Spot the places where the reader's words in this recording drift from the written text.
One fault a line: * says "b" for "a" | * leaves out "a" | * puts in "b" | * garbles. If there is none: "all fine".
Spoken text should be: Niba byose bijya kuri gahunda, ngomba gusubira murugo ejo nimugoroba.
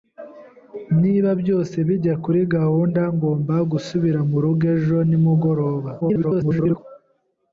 * garbles